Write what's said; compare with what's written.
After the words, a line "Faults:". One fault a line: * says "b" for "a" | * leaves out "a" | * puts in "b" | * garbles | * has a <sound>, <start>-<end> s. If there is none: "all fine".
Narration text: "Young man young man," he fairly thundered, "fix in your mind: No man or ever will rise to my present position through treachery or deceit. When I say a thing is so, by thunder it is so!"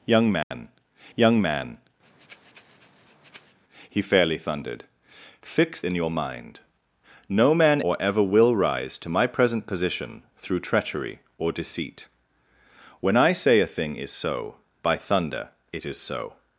"Young man young man," he fairly thundered, "fix in your mind: No man or ever will rise to my present position through treachery or deceit. When I say a thing is so, by thunder it is so!"
Faults:
* has a dropout, 0.4-0.5 s
* has a breath, 2.0-3.6 s